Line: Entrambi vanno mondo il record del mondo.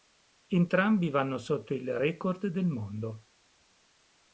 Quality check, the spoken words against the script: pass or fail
fail